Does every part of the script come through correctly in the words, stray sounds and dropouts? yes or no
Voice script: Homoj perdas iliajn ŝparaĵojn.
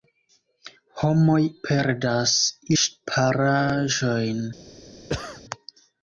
no